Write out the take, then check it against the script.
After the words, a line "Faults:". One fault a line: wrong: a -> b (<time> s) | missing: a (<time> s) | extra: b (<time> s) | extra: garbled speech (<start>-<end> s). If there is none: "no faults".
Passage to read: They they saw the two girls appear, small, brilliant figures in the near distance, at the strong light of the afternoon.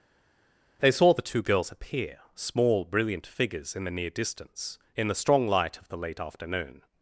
They saw the two girls appear, small, brilliant figures in the near distance, in the strong light of the late afternoon.
Faults:
missing: they (0.9 s)
wrong: at -> in (4.9 s)
extra: late (6.0 s)